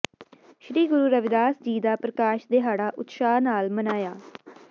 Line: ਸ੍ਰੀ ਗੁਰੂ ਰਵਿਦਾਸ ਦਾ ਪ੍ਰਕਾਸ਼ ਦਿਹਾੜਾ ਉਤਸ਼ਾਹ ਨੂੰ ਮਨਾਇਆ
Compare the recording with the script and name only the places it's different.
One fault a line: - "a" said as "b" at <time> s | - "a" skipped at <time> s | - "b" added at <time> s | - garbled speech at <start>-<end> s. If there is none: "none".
- "ਜੀ" added at 1.6 s
- "ਨੂੰ" said as "ਨਾਲ" at 3.4 s